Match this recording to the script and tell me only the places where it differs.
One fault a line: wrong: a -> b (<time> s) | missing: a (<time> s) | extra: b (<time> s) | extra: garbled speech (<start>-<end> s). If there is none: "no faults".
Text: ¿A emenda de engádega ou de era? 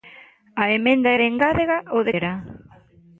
no faults